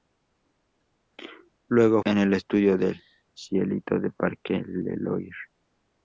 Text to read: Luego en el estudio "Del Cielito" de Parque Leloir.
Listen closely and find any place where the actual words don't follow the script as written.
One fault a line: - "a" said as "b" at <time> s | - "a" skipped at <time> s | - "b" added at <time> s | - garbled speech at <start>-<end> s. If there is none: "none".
none